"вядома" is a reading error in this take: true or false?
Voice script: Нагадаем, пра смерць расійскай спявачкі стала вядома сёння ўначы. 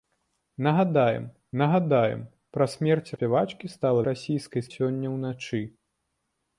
true